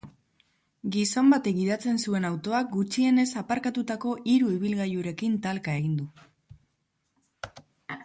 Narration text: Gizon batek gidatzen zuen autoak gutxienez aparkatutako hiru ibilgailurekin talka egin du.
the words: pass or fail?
pass